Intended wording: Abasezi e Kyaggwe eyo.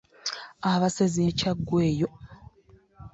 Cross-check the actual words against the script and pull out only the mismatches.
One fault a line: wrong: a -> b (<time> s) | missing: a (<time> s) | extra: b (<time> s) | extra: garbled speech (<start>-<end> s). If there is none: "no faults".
no faults